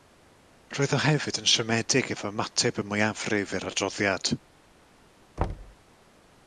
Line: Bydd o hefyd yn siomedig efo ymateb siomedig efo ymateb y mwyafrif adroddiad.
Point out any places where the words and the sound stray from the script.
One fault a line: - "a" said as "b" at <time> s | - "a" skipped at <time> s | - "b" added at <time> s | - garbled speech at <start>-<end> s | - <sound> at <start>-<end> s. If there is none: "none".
- "Bydd" said as "Roedd" at 0.8 s
- "siomedig efo ymateb" skipped at 2.8 s
- "i'r" added at 3.6 s
- thud at 5.4-5.8 s